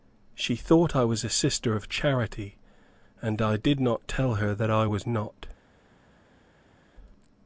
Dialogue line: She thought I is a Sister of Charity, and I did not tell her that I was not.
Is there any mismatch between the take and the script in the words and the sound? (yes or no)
yes